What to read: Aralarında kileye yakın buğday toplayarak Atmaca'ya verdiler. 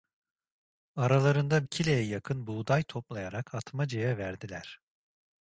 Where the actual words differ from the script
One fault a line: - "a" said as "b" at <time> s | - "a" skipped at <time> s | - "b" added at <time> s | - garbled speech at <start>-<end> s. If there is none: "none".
none